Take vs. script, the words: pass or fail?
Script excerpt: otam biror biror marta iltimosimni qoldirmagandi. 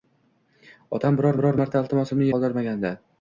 pass